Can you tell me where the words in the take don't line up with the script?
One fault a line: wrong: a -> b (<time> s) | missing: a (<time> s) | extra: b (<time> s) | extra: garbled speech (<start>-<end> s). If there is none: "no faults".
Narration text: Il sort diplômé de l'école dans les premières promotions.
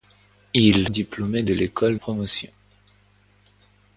missing: sort (0.9 s)
missing: dans les premières (2.0 s)